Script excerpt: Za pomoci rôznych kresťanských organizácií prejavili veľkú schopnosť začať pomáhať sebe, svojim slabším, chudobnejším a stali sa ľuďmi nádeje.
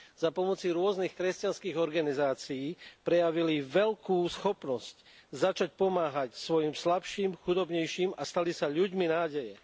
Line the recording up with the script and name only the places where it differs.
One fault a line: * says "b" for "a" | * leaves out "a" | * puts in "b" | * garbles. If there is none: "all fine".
* leaves out "sebe"